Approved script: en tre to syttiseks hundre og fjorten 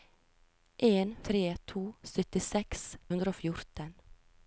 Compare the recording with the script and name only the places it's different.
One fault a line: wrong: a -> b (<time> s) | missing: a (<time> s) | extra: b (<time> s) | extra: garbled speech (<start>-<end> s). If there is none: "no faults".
no faults